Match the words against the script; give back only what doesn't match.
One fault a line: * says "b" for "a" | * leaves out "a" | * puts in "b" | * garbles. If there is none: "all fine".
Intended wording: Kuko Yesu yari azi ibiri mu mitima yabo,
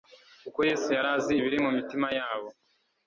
all fine